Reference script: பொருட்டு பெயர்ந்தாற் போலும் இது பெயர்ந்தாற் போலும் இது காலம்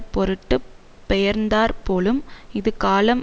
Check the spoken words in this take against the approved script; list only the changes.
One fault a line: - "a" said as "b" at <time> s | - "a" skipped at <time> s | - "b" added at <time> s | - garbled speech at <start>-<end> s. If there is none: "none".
- "பெயர்ந்தாற் போலும் இது" skipped at 2.7 s